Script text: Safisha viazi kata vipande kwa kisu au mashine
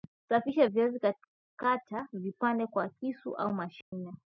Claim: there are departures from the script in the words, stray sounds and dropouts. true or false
true